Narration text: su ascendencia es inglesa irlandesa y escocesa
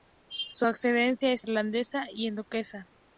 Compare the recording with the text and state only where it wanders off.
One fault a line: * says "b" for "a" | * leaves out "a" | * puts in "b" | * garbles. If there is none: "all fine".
* leaves out "inglesa"